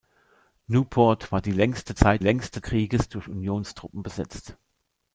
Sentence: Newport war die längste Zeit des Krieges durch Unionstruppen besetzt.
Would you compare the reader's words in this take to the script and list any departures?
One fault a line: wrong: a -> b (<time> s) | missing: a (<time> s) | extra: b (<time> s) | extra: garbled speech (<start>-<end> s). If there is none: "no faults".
wrong: des -> längste (2.2 s)